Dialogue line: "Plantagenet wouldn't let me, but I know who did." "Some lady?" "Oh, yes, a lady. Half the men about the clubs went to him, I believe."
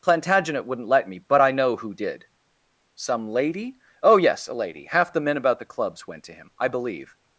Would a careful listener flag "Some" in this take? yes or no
no